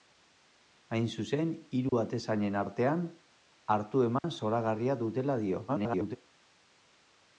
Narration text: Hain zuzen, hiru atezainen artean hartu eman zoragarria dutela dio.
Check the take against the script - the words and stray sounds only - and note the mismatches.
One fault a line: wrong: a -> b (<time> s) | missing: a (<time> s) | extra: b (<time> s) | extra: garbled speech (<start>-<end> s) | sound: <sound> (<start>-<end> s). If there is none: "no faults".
sound: dropout (1.9-1.9 s)
sound: dropout (4.2-4.2 s)
extra: garbled speech (5.7-6.2 s)